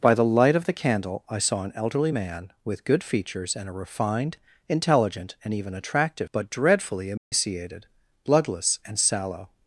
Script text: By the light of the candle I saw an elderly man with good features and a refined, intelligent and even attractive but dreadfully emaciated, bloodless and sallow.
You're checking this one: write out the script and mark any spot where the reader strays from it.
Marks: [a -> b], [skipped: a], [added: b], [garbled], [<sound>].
By the light of the candle I saw an elderly man with good features and a refined, intelligent and even attractive but dreadfully emaciated, [dropout] bloodless and sallow.